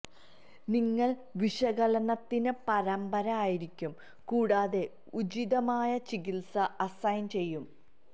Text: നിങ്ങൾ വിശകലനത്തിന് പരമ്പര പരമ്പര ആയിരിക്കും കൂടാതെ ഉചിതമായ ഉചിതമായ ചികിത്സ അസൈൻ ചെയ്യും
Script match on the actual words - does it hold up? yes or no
no